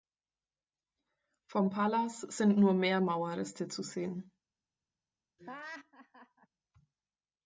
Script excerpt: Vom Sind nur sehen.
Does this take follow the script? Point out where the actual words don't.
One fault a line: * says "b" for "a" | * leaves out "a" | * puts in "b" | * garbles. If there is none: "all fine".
* puts in "Palas"
* puts in "mehr Mauerreste zu"